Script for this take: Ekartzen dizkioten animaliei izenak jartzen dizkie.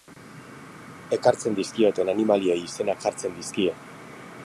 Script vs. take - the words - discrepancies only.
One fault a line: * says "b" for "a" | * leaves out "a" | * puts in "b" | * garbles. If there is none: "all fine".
all fine